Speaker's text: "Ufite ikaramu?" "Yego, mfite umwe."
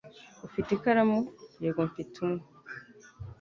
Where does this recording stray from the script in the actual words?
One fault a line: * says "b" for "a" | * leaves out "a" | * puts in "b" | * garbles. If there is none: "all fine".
all fine